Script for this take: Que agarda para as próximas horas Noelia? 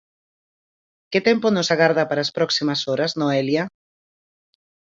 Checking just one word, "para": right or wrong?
right